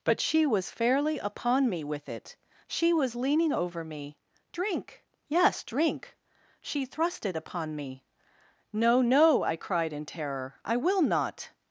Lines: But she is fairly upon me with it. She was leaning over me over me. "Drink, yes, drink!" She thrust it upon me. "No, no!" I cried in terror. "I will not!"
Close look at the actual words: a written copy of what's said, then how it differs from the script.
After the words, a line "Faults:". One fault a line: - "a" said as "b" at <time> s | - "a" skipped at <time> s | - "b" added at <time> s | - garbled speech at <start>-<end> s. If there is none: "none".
But she was fairly upon me with it. She was leaning over me. "Drink, yes, drink!" She thrust it upon me. "No, no!" I cried in terror. "I will not!"
Faults:
- "is" said as "was" at 0.5 s
- "over me" skipped at 4.2 s